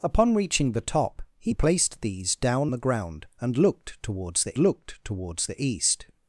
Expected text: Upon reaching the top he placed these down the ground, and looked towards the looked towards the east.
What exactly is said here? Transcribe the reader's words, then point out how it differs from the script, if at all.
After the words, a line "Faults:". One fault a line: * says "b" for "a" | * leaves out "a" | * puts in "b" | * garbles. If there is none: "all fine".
Upon reaching the top he placed these down the ground, and looked towards the looked towards the east.
Faults:
all fine